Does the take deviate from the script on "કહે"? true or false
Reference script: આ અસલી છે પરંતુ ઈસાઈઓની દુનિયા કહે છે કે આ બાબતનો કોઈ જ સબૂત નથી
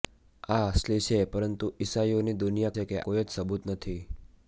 true